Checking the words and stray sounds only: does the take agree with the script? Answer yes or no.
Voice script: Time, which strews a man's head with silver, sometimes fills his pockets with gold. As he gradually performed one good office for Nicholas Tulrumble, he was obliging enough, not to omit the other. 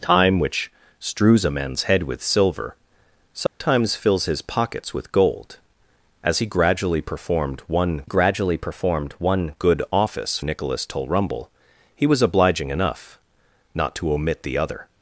no